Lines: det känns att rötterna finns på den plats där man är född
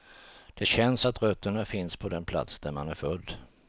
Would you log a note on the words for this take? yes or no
no